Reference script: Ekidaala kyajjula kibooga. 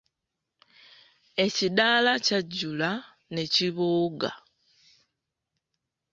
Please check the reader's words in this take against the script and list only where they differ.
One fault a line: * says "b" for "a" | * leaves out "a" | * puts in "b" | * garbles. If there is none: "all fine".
* puts in "ne"